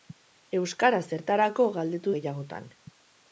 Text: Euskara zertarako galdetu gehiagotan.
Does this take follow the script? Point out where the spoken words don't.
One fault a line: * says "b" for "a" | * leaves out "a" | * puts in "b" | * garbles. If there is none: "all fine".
all fine